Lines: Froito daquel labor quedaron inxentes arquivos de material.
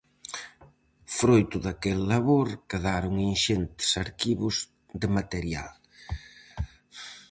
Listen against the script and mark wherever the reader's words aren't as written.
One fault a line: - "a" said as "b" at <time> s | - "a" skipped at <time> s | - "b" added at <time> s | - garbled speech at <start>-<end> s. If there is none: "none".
none